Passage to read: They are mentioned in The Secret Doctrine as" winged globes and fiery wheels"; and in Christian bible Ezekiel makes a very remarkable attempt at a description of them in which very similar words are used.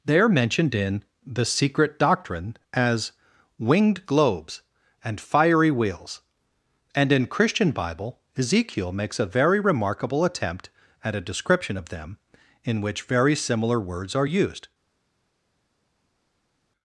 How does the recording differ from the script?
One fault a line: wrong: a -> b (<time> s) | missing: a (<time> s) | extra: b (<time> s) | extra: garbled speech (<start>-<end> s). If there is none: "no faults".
no faults